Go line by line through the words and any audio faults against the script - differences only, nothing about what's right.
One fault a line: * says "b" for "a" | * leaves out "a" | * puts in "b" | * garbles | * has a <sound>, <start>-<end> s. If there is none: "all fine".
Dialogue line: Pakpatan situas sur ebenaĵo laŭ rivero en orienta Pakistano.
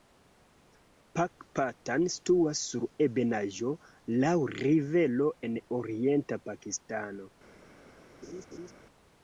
* has a laugh, 8.2-8.7 s